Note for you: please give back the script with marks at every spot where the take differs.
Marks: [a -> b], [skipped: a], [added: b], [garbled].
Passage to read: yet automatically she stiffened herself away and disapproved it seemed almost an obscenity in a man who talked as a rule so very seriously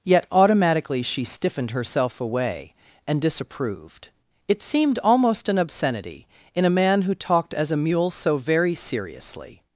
yet automatically she stiffened herself away and disapproved it seemed almost an obscenity in a man who talked as a [rule -> mule] so very seriously